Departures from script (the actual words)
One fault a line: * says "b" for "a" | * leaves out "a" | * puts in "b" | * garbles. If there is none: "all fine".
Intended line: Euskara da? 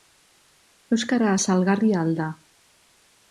* puts in "salgarria al"